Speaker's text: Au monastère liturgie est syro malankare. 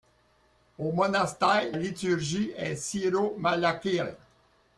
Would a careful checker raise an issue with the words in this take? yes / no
no